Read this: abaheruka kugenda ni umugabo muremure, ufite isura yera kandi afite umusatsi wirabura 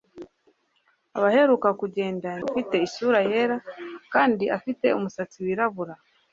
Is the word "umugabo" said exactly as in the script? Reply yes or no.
no